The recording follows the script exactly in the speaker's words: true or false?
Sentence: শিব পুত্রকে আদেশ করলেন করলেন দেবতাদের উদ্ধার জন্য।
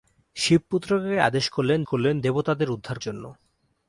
true